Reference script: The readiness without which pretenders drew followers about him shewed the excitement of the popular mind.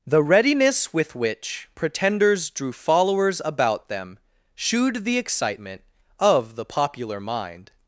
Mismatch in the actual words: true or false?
true